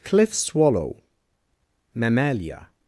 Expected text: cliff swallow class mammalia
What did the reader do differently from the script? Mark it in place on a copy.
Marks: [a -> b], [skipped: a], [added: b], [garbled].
cliff swallow [skipped: class] mammalia